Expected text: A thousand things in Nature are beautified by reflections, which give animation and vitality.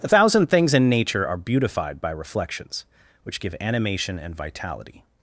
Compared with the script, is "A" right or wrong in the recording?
wrong